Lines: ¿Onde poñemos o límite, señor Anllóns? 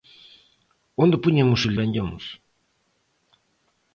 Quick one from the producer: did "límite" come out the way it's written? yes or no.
no